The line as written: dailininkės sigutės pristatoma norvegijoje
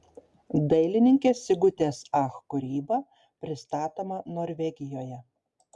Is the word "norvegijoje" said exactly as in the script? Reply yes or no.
yes